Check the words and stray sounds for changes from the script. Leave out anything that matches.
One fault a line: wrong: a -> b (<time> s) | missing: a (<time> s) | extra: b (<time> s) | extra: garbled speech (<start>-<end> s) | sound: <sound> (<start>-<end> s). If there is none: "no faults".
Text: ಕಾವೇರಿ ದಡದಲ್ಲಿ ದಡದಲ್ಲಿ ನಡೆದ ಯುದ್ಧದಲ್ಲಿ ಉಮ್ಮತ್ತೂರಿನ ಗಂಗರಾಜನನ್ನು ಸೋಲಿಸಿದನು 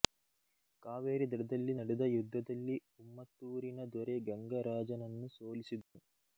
missing: ದಡದಲ್ಲಿ (1.7 s)
extra: ದೊರೆ (3.9 s)
sound: dropout (5.8-5.9 s)